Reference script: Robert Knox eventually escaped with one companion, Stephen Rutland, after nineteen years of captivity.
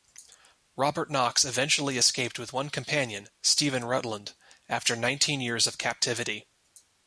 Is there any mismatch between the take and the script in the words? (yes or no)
no